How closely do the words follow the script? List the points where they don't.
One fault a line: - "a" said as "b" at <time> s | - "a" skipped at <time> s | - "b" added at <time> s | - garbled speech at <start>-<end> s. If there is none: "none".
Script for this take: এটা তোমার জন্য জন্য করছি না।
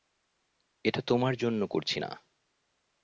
- "জন্য" skipped at 1.6 s